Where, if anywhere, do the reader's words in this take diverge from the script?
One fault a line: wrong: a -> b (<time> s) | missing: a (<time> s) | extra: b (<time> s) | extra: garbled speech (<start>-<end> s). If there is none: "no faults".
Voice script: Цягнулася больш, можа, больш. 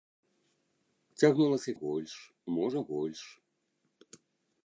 no faults